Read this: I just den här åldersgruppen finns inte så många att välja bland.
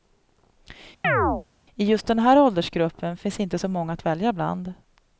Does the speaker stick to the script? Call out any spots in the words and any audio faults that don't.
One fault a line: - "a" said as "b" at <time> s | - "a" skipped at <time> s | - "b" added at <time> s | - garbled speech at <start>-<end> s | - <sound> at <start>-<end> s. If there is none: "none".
- chirp at 1.0-1.4 s